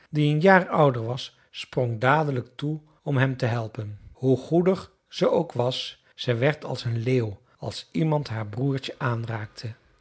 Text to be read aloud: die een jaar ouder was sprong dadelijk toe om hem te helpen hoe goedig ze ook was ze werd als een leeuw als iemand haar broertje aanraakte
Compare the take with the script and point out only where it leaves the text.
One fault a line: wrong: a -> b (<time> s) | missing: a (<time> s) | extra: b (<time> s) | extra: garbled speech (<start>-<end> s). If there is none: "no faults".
no faults